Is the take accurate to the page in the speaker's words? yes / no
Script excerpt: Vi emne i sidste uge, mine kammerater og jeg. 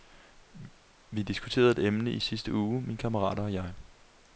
no